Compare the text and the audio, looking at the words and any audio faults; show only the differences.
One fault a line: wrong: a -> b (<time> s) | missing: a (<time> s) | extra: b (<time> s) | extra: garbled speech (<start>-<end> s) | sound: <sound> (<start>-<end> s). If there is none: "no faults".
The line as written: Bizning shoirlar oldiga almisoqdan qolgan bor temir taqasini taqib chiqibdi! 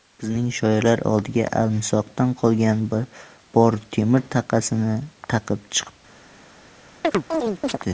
sound: chirp (7.0-7.8 s)